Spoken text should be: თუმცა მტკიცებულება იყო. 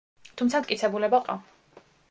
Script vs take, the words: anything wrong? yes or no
no